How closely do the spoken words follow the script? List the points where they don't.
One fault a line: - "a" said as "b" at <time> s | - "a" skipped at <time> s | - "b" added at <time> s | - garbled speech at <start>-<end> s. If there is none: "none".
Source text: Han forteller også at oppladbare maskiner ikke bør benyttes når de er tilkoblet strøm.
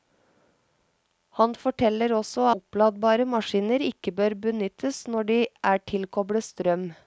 - "at" skipped at 2.5 s